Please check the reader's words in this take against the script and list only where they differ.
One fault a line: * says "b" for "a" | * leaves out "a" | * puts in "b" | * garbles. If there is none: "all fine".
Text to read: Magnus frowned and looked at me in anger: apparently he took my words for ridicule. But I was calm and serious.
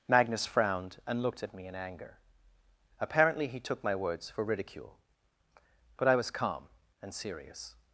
all fine